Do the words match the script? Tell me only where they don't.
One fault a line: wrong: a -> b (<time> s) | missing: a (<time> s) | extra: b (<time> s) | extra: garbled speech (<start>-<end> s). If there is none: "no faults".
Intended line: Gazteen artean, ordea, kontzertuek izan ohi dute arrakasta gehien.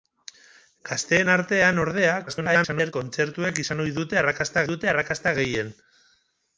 extra: garbled speech (2.3-2.9 s)
extra: dute arrakasta (4.7 s)